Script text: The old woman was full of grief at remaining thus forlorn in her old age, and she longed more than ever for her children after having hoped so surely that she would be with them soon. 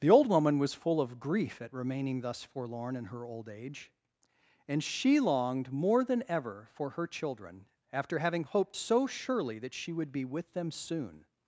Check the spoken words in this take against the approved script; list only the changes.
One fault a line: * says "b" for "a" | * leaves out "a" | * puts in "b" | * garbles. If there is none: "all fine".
all fine